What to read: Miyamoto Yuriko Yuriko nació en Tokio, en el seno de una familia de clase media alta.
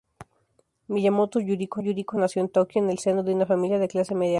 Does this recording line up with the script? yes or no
yes